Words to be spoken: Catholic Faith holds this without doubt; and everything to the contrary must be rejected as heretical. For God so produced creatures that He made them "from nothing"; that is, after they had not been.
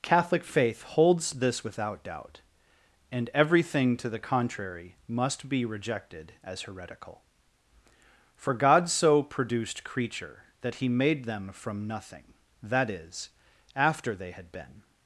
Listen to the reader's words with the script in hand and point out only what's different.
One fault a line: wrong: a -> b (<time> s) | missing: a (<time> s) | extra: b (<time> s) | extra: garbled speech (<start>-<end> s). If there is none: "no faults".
wrong: creatures -> creature (9.8 s)
missing: not (14.5 s)